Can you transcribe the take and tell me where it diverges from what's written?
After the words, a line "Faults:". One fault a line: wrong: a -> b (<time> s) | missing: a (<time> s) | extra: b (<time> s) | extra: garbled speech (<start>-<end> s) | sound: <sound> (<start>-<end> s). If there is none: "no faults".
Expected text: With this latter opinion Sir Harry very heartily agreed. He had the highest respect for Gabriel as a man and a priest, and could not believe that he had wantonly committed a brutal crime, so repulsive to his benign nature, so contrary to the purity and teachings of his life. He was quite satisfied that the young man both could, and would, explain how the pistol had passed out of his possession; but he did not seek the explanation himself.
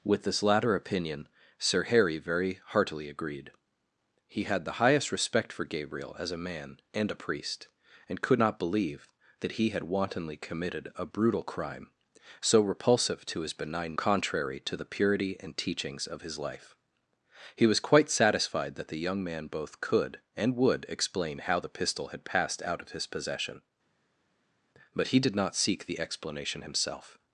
With this latter opinion Sir Harry very heartily agreed. He had the highest respect for Gabriel as a man and a priest, and could not believe that he had wantonly committed a brutal crime, so repulsive to his benign contrary to the purity and teachings of his life. He was quite satisfied that the young man both could, and would, explain how the pistol had passed out of his possession; but he did not seek the explanation himself.
Faults:
missing: nature so (14.0 s)